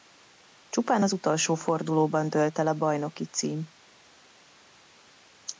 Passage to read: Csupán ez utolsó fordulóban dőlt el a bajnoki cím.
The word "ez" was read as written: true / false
false